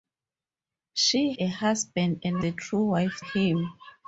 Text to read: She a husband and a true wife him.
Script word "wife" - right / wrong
right